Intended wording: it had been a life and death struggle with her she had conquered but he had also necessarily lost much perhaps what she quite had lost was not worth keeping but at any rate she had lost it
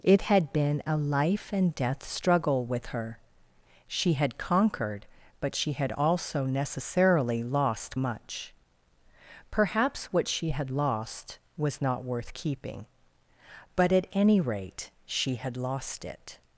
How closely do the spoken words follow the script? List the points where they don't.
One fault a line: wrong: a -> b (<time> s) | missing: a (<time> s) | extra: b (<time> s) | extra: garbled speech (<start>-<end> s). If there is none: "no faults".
wrong: he -> she (5.5 s)
missing: quite (10.5 s)